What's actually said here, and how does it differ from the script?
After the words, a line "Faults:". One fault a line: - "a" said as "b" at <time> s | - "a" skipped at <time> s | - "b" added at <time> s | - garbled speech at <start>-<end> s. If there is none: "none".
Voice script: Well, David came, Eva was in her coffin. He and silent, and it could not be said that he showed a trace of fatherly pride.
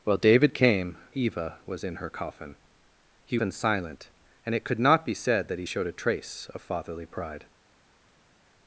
Well, David came, Eva was in her coffin. He and silent, and it could not be said that he showed a trace of fatherly pride.
Faults:
none